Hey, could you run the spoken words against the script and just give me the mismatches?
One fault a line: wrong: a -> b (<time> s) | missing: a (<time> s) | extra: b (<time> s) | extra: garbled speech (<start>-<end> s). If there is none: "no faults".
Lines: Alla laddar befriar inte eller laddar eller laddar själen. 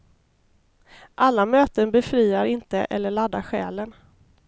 wrong: laddar -> möten (1.4 s)
missing: eller laddar (3.4 s)